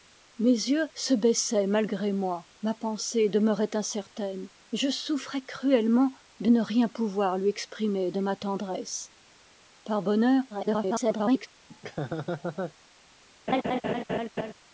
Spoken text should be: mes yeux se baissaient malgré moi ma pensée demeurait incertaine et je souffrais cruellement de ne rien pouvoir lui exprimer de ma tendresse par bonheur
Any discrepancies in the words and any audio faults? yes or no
yes